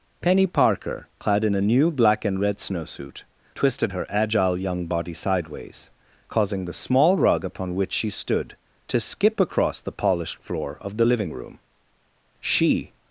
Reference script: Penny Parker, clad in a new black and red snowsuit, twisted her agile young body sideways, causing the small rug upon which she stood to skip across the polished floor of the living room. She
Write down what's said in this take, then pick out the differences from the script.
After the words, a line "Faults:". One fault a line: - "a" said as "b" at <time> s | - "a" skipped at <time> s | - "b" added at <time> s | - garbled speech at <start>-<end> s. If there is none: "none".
Penny Parker, clad in a new black and red snowsuit, twisted her agile young body sideways, causing the small rug upon which she stood to skip across the polished floor of the living room. She
Faults:
none